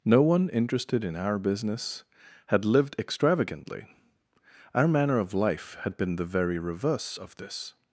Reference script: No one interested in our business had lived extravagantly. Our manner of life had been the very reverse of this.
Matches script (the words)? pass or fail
pass